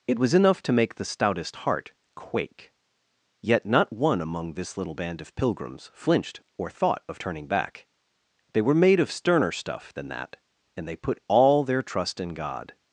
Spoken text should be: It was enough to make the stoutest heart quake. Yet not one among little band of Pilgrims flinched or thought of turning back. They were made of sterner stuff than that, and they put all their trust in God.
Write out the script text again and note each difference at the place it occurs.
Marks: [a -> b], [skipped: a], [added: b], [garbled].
It was enough to make the stoutest heart quake. Yet not one among [added: this] little band of Pilgrims flinched or thought of turning back. They were made of sterner stuff than that, and they put all their trust in God.